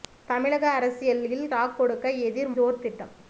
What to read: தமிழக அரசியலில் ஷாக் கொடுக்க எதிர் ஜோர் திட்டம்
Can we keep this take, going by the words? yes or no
yes